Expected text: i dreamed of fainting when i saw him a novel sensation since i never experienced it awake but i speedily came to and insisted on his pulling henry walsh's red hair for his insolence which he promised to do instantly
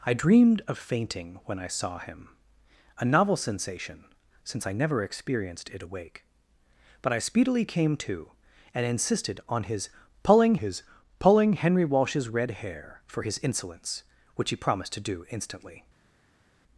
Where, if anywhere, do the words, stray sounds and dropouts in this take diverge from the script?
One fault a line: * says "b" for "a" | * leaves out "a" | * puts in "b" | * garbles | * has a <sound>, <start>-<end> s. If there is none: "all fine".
* puts in "his pulling"